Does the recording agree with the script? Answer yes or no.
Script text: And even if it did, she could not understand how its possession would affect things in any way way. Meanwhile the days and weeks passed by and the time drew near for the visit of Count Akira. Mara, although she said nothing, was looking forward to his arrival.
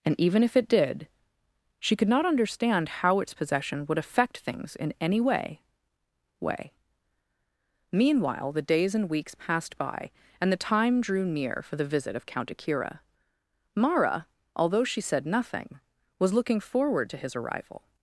yes